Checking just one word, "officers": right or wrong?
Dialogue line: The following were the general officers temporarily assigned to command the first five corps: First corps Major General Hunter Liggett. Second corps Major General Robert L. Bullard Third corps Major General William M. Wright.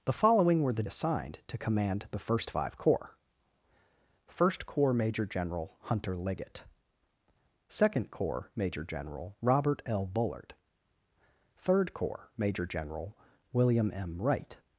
wrong